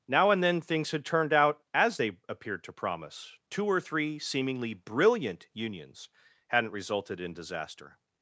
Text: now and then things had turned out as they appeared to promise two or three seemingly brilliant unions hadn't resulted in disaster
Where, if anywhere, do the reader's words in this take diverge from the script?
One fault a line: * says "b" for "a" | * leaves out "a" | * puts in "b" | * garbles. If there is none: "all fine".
all fine